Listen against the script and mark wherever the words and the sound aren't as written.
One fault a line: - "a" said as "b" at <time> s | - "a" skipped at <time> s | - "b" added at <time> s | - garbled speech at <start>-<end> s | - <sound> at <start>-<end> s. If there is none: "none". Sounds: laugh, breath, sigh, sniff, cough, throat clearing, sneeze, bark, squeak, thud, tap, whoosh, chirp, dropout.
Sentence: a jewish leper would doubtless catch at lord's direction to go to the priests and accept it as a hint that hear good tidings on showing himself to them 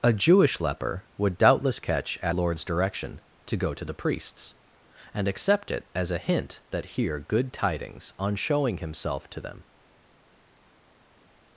none